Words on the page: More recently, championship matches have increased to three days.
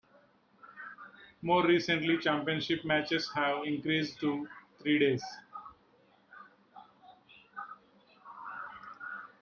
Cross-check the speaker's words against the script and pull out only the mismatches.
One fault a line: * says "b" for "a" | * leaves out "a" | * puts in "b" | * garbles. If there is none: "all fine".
all fine